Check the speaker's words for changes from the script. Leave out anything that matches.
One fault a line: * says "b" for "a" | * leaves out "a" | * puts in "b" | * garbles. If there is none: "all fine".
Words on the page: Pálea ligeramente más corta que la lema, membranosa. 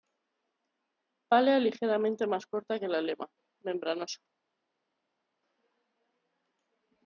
all fine